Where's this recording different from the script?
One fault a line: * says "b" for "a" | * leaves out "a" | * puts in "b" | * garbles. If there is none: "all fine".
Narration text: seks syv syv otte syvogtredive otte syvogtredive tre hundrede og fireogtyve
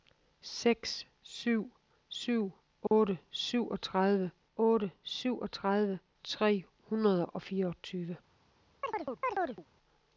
all fine